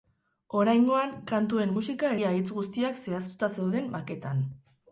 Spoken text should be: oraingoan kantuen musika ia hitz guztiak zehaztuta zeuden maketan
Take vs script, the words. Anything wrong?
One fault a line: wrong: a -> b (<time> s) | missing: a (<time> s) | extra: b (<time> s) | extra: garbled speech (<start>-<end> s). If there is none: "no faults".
no faults